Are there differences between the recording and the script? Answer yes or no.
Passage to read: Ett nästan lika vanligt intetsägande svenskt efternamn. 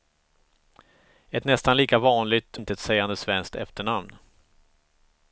no